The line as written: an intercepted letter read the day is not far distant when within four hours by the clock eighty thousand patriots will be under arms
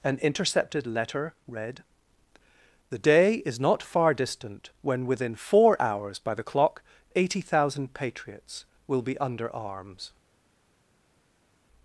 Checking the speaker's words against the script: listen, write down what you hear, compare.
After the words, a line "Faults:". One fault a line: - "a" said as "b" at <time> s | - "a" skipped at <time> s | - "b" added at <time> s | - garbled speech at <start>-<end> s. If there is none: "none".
an intercepted letter read the day is not far distant when within four hours by the clock eighty thousand patriots will be under arms
Faults:
none